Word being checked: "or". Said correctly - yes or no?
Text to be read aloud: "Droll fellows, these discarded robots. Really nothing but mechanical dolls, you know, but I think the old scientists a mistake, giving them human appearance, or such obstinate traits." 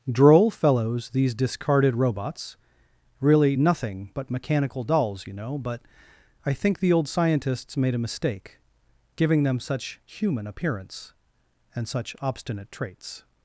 no